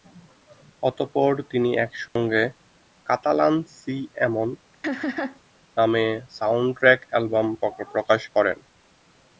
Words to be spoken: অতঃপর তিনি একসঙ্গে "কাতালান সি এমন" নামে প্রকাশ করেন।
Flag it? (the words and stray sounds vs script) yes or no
yes